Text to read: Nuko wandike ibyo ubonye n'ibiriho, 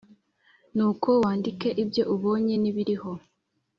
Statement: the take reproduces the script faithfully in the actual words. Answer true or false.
true